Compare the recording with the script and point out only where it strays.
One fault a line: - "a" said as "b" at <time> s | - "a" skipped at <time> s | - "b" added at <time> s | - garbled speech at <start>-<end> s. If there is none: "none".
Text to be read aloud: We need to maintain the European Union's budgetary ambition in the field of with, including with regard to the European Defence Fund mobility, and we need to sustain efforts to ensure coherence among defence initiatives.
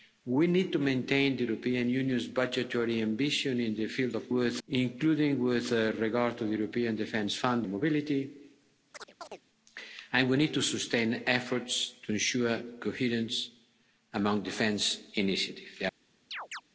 none